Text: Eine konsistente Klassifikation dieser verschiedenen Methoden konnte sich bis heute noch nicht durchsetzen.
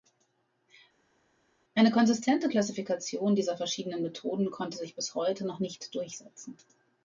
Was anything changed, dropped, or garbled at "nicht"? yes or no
no